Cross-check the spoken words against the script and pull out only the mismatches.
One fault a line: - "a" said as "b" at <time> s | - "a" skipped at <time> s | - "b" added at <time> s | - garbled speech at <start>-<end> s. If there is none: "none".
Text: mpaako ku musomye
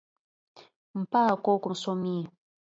none